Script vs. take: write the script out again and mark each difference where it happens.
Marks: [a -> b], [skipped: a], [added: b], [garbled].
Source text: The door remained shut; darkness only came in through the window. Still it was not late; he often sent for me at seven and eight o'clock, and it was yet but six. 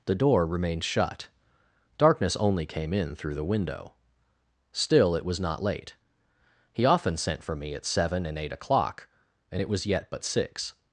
The door remained shut; darkness only came in through the window. Still it was not late; he often sent for me at seven and eight o'clock, and it was yet but six.